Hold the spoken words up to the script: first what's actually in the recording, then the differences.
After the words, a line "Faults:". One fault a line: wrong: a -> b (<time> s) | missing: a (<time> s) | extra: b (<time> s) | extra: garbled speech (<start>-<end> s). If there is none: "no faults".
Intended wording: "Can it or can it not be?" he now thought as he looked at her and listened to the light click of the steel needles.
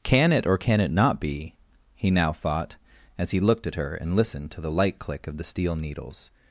"Can it or can it not be?" he now thought as he looked at her and listened to the light click of the steel needles.
Faults:
no faults